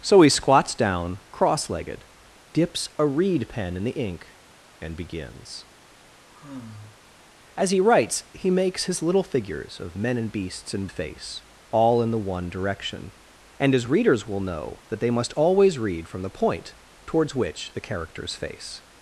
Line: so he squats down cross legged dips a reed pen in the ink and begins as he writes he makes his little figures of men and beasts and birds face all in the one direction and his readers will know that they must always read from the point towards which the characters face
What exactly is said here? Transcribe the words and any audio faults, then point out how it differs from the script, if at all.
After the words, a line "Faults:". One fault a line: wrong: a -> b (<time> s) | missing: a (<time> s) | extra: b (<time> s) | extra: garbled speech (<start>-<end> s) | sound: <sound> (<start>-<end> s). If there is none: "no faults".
so he squats down cross legged dips a reed pen in the ink and begins as he writes he makes his little figures of men and beasts and face all in the one direction and his readers will know that they must always read from the point towards which the characters face
Faults:
sound: sigh (6.3-7.0 s)
missing: birds (10.9 s)